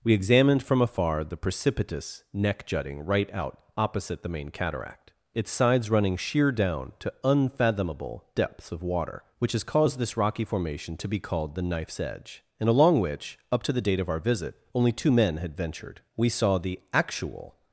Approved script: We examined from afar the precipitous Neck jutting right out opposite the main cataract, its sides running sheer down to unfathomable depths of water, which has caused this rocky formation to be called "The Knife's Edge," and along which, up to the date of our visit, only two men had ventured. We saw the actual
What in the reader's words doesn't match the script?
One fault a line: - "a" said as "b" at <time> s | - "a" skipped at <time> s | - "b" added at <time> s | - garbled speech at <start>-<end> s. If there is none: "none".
none